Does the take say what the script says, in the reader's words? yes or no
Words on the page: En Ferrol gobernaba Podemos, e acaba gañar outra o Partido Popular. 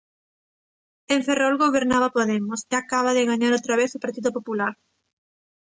no